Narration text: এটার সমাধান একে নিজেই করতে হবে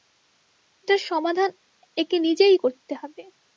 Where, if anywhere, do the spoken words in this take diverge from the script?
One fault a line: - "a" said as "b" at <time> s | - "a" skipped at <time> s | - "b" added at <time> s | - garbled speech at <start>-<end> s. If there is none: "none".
none